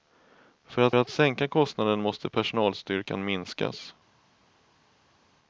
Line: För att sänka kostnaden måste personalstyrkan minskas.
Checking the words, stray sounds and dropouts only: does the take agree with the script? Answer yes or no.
no